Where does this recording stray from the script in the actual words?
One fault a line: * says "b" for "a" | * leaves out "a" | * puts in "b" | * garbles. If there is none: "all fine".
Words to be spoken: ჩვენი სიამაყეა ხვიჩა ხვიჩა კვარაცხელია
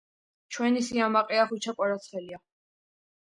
* leaves out "ხვიჩა"